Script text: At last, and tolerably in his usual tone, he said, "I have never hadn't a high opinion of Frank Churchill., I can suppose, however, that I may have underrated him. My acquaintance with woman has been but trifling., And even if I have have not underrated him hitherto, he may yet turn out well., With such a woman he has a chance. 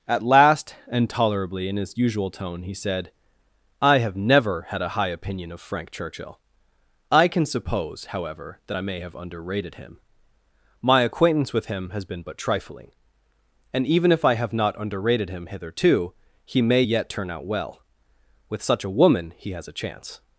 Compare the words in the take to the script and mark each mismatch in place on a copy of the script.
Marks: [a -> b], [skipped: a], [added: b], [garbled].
At last, and tolerably in his usual tone, he said, "I have never [hadn't -> had] a high opinion of Frank Churchill., I can suppose, however, that I may have underrated him. My acquaintance with [woman -> him] has been but trifling., And even if I have [skipped: have] not underrated him hitherto, he may yet turn out well., With such a woman he has a chance.